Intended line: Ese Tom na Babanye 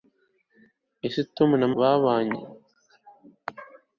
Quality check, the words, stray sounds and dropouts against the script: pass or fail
pass